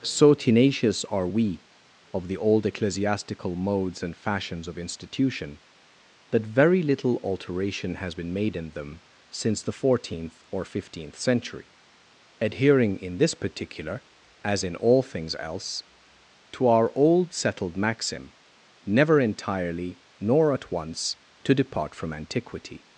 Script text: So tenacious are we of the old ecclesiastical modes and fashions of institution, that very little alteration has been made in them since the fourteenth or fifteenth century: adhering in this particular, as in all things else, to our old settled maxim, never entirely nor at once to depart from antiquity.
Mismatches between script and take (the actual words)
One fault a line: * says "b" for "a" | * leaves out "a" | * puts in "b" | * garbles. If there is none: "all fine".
all fine